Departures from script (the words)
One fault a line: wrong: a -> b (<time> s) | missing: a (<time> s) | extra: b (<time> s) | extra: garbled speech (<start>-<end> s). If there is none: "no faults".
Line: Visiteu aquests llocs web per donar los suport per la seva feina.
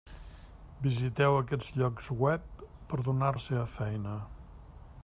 missing: los suport per (3.3 s)